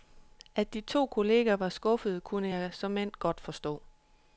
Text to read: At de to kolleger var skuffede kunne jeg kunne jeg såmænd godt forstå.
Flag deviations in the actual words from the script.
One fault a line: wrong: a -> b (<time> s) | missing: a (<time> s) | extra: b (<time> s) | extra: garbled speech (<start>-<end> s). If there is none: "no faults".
missing: kunne jeg (2.7 s)